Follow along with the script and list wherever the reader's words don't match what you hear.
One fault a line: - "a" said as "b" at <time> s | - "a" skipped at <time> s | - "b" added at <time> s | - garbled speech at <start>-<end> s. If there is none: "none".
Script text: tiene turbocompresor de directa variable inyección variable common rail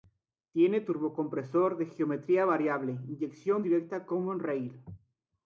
- "directa" said as "geometría" at 1.9 s
- "variable" said as "directa" at 3.6 s